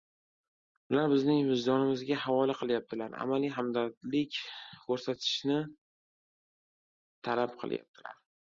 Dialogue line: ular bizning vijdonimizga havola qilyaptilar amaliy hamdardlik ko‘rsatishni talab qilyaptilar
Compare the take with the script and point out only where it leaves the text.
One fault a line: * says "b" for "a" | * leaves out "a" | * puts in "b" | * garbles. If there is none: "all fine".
all fine